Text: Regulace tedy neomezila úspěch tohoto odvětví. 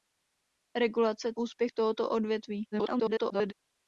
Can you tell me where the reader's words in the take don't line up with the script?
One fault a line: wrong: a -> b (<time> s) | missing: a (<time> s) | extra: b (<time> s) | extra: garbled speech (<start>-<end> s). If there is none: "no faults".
missing: tedy neomezila (1.3 s)
extra: garbled speech (2.7-3.5 s)